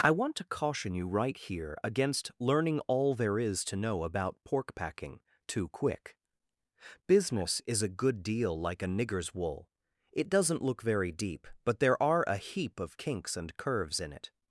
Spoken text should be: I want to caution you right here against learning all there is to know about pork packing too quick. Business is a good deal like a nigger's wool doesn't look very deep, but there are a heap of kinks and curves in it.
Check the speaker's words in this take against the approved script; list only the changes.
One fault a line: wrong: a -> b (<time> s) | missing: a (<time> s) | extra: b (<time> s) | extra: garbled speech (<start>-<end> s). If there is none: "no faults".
extra: it (10.1 s)